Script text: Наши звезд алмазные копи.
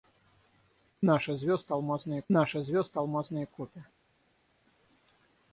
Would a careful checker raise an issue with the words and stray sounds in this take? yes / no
yes